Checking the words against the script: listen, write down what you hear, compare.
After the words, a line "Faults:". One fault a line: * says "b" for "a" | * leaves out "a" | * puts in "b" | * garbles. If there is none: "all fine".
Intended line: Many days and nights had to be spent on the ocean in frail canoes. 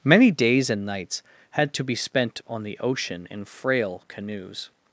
Many days and nights had to be spent on the ocean in frail canoes.
Faults:
all fine